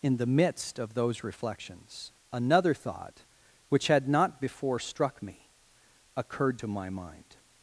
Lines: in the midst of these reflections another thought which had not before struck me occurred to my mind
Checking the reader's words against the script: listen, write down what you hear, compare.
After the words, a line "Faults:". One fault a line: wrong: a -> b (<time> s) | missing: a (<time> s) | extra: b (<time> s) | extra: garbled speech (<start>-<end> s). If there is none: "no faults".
in the midst of those reflections another thought which had not before struck me occurred to my mind
Faults:
wrong: these -> those (0.9 s)